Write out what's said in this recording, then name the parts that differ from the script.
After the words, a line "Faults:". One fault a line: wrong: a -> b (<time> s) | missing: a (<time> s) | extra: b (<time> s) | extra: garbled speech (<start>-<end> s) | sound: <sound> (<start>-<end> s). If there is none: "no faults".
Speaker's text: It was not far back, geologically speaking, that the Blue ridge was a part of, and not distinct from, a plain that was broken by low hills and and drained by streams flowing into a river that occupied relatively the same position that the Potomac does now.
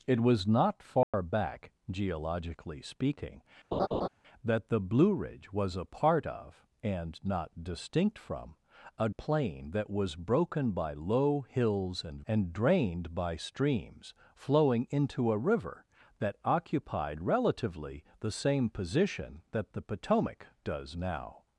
It was not far back, geologically speaking, that the Blue ridge was a part of, and not distinct from, a plain that was broken by low hills and and drained by streams flowing into a river that occupied relatively the same position that the Potomac does now.
Faults:
sound: dropout (1.0-1.1 s)
sound: laugh (3.7-4.1 s)